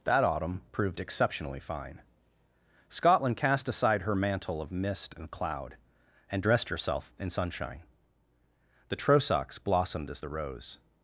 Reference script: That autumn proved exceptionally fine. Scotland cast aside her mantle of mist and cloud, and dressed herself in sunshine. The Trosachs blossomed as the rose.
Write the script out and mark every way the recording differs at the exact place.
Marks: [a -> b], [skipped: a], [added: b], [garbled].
That autumn proved exceptionally fine. Scotland cast aside her mantle of mist and cloud, and dressed herself in sunshine. The Trosachs blossomed as the rose.